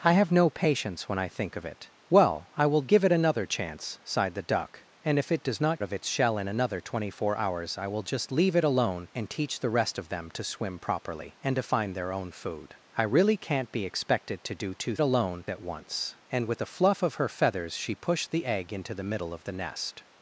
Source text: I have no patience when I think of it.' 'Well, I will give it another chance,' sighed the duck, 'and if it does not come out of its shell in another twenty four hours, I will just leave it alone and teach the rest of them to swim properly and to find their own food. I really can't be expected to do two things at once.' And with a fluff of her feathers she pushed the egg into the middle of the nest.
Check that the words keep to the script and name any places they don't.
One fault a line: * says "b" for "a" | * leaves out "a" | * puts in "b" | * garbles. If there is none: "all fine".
* leaves out "come out"
* says "alone" for "things"